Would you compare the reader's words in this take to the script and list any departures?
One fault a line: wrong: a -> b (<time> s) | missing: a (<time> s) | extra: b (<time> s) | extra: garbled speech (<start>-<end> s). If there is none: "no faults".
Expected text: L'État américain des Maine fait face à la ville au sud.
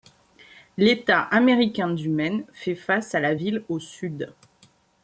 wrong: des -> du (1.9 s)